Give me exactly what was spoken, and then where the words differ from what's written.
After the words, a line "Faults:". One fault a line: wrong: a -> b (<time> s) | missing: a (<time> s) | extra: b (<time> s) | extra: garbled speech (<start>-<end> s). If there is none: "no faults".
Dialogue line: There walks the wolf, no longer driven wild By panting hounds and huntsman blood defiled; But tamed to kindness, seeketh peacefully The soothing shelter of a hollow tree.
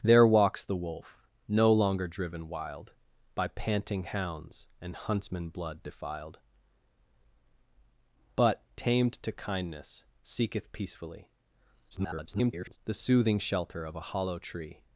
There walks the wolf, no longer driven wild By panting hounds and huntsman blood defiled; But tamed to kindness, seeketh peacefully [garbled] The soothing shelter of a hollow tree.
Faults:
extra: garbled speech (11.9-12.8 s)